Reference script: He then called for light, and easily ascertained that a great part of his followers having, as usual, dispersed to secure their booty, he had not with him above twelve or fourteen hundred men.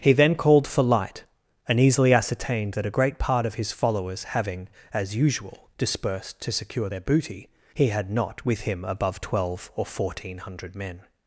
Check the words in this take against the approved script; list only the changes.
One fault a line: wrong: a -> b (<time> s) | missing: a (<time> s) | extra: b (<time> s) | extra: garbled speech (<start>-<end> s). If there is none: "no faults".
no faults